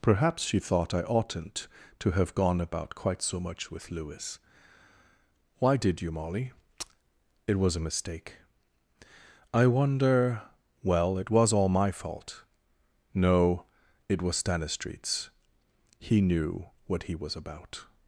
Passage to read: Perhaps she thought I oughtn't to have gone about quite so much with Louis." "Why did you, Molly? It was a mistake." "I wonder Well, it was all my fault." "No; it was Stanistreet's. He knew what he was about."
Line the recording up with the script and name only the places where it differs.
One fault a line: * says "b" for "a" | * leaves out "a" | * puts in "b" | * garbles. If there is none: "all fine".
all fine